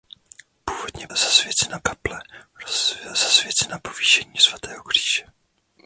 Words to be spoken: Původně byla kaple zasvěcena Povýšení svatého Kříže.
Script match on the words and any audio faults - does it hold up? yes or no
no